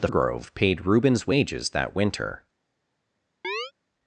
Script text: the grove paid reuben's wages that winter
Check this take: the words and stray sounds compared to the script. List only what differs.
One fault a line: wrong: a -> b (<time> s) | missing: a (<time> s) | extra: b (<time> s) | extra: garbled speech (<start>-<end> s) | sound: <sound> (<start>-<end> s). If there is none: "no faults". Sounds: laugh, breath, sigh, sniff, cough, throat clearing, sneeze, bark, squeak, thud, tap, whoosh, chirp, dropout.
sound: chirp (3.4-3.7 s)